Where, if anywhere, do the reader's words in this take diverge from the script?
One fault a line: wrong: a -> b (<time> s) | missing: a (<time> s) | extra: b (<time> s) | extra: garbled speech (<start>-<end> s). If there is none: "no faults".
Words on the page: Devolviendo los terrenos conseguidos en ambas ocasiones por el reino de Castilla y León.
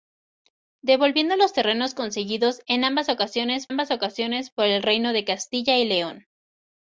extra: ambas ocasiones (3.7 s)